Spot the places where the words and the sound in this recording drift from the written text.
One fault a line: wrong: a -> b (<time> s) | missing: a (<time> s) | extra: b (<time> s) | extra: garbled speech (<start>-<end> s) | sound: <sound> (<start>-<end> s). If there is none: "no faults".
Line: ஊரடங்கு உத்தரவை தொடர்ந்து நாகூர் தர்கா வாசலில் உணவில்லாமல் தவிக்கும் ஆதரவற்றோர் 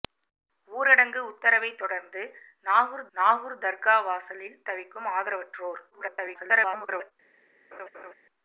extra: நாகூர் (3.2 s)
missing: உணவில்லாமல் (4.6 s)
extra: garbled speech (5.9-7.1 s)
sound: laugh (7.7-8.1 s)